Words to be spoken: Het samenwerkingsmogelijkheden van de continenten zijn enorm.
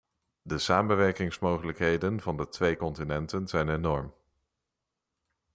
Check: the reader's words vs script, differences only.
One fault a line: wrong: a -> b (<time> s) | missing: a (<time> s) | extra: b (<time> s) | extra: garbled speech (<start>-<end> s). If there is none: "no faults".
wrong: Het -> De (0.4 s)
extra: twee (2.5 s)